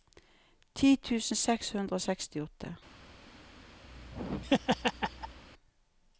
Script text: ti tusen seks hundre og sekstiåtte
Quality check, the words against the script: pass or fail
pass